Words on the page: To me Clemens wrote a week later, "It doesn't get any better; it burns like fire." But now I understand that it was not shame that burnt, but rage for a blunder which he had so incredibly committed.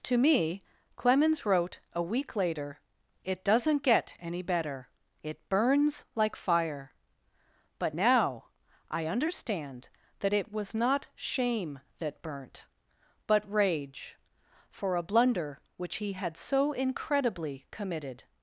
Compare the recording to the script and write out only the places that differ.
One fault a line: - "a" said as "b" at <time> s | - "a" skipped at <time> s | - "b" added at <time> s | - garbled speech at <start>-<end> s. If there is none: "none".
none